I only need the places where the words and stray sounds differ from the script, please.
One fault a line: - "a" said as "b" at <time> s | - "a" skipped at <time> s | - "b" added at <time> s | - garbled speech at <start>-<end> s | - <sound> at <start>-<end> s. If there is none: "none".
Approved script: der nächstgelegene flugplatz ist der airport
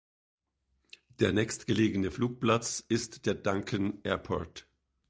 - "duncan" added at 3.4 s